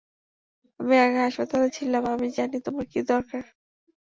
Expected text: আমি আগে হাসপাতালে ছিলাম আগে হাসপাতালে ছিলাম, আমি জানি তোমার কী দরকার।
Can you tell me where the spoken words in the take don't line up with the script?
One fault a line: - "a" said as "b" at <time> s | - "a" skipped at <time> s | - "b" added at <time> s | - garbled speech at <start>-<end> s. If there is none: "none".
- "আগে হাসপাতালে ছিলাম" skipped at 2.0 s